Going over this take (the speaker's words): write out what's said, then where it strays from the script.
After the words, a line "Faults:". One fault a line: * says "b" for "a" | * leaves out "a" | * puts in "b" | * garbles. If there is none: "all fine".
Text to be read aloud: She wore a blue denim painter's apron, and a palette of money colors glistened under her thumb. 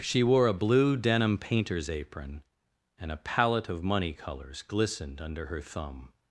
She wore a blue denim painter's apron, and a palette of money colors glistened under her thumb.
Faults:
all fine